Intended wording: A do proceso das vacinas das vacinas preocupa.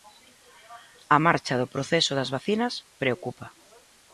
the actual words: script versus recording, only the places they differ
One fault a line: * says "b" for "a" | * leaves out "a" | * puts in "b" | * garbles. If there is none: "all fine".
* puts in "marcha"
* leaves out "das vacinas"